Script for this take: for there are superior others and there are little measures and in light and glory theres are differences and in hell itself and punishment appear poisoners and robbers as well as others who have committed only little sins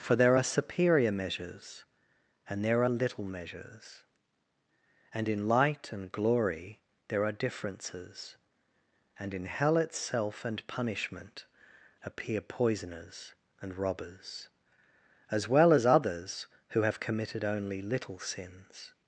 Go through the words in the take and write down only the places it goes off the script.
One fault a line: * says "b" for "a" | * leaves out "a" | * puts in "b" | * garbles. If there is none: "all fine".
* says "measures" for "others"
* says "there" for "theres"